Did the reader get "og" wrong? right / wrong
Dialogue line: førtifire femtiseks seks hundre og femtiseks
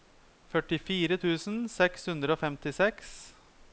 right